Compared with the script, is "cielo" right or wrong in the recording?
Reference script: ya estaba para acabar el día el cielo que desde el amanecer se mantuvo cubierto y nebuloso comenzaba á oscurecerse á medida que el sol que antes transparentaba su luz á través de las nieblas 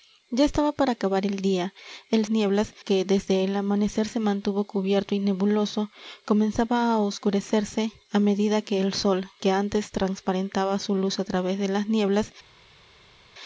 wrong